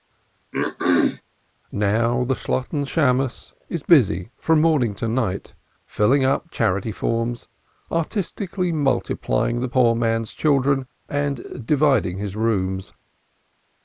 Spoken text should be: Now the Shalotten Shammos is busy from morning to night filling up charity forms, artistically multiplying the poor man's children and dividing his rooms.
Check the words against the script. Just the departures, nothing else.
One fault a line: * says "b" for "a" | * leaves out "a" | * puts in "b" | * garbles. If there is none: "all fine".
all fine